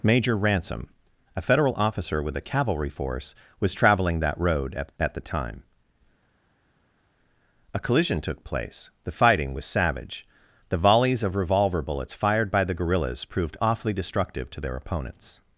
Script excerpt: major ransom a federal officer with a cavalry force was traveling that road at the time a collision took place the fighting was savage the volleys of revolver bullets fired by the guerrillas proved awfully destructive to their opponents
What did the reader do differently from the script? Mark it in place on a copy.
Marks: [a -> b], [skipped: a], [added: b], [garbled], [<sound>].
major ransom a federal officer with a cavalry force was traveling that road at [added: at] the time a collision took place the fighting was savage the volleys of revolver bullets fired by the guerrillas proved awfully destructive to their opponents